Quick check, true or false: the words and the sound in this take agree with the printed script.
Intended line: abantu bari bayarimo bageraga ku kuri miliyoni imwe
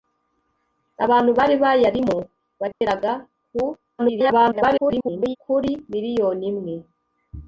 false